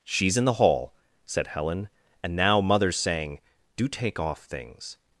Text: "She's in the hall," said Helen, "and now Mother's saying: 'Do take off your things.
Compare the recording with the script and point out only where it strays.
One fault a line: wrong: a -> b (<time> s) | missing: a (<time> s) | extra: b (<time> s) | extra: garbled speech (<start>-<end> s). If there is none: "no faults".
missing: your (4.4 s)